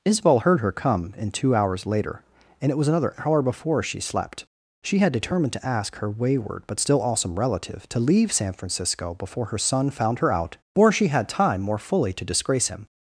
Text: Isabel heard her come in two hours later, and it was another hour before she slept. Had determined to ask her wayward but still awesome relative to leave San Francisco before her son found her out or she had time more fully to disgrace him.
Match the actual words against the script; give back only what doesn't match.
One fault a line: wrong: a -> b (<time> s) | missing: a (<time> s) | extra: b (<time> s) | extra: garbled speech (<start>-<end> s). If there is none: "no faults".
extra: She (4.8 s)